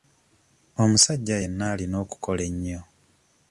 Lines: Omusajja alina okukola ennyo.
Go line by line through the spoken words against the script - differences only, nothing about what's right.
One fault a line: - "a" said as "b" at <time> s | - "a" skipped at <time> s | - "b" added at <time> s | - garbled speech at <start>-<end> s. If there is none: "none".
- "yenna" added at 1.4 s